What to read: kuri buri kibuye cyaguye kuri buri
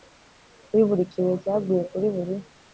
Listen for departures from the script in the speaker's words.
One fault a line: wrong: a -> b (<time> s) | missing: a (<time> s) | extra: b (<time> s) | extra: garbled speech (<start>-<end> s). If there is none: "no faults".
no faults